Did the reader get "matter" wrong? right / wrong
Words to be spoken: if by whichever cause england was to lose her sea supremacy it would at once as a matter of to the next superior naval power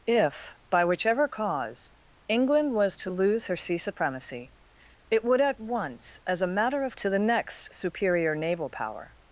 right